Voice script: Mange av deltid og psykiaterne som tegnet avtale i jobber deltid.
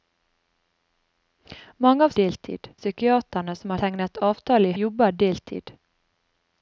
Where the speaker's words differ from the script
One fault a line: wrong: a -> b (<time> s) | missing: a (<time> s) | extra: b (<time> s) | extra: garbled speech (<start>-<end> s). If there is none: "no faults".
no faults